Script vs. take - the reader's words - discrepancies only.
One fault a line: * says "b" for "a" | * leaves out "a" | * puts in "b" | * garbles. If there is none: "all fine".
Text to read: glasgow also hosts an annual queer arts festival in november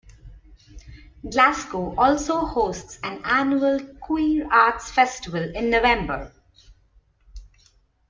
all fine